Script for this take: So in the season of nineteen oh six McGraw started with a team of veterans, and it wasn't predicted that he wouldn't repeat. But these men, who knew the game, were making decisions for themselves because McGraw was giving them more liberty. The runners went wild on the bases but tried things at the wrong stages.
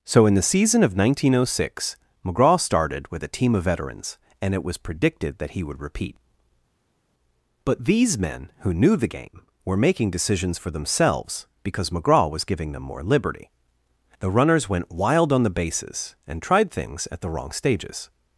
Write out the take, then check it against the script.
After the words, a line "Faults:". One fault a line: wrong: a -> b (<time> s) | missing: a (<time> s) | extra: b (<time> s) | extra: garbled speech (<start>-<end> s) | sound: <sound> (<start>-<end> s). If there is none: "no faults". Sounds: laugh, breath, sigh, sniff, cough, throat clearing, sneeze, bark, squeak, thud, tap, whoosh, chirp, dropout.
So in the season of nineteen oh six McGraw started with a team of veterans, and it was predicted that he would repeat. But these men, who knew the game, were making decisions for themselves because McGraw was giving them more liberty. The runners went wild on the bases and tried things at the wrong stages.
Faults:
wrong: wasn't -> was (4.6 s)
wrong: wouldn't -> would (5.6 s)
wrong: but -> and (16.3 s)